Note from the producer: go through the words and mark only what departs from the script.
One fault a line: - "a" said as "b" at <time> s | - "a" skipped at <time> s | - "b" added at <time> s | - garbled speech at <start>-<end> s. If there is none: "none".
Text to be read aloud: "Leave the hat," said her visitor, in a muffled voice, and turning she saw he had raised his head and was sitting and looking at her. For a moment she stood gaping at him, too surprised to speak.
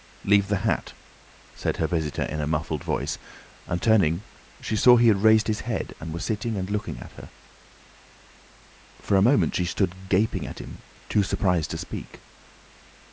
none